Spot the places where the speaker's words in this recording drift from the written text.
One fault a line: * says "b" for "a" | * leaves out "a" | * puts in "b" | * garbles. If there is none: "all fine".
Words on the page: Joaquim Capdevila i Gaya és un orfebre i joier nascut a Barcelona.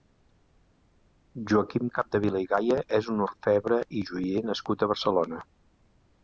all fine